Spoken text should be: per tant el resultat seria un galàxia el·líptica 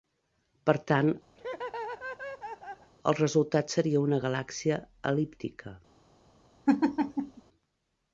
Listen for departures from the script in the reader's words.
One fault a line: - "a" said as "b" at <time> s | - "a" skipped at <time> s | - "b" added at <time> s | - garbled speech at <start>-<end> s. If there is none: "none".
- "un" said as "una" at 4.1 s